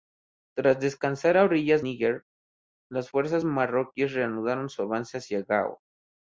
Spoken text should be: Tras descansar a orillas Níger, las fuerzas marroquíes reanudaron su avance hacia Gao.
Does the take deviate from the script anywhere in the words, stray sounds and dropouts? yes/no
no